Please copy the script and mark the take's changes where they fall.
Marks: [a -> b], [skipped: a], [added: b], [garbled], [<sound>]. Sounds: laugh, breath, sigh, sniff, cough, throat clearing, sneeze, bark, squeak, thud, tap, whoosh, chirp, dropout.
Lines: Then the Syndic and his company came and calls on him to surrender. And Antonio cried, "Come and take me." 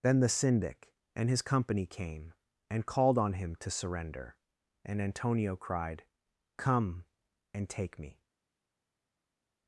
Then the Syndic and his company came and [calls -> called] on him to surrender. And Antonio cried, "Come and take me."